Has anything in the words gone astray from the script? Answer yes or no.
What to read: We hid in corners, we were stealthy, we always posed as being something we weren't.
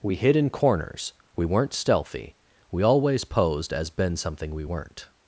yes